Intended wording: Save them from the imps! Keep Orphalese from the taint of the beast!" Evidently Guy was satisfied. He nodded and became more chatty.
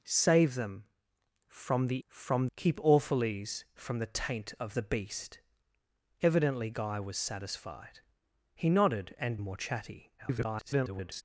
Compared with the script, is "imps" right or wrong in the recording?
wrong